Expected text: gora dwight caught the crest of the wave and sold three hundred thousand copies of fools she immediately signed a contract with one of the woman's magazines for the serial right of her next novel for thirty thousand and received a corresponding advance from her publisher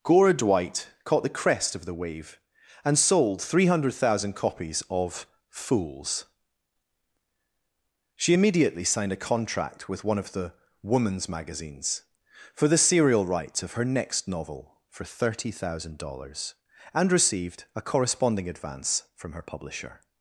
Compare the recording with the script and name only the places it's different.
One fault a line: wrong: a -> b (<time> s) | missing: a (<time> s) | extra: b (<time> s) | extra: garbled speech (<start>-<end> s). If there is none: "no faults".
wrong: right -> rights (13.2 s)
extra: dollars (16.0 s)